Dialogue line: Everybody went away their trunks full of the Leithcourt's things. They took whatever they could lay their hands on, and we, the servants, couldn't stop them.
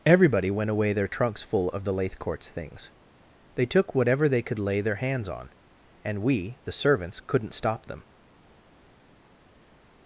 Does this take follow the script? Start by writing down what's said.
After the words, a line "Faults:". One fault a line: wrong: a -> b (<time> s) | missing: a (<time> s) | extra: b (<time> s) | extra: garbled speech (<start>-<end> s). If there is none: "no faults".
Everybody went away their trunks full of the Leithcourt's things. They took whatever they could lay their hands on, and we, the servants, couldn't stop them.
Faults:
no faults